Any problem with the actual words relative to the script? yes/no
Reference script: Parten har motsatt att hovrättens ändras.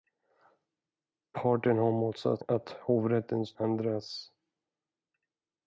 no